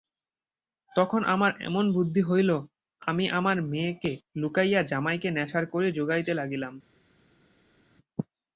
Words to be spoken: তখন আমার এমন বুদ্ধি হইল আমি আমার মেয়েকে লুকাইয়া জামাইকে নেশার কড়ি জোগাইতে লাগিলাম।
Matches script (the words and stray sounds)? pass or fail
pass